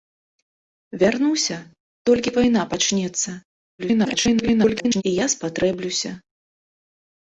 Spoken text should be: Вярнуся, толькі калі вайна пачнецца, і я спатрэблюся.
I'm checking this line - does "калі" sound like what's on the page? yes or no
no